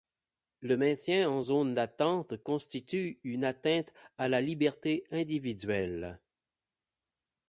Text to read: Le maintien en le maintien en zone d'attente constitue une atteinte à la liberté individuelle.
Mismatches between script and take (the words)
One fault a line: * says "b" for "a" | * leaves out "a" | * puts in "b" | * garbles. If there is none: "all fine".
* leaves out "le maintien en"